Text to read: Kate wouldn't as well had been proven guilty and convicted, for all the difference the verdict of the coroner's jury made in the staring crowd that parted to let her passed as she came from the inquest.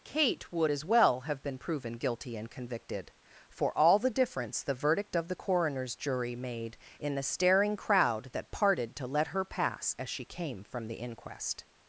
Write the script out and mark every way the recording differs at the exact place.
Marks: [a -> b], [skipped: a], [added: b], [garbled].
Kate [wouldn't -> would] as well [had -> have] been proven guilty and convicted, for all the difference the verdict of the coroner's jury made in the staring crowd that parted to let her [passed -> pass] as she came from the inquest.